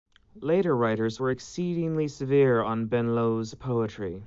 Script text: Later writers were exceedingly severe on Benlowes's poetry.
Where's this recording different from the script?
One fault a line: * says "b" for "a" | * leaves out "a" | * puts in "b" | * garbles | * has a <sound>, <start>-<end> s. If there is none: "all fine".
all fine